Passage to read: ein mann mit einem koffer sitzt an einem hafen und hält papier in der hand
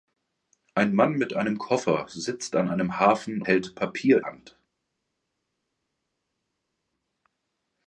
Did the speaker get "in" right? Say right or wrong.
wrong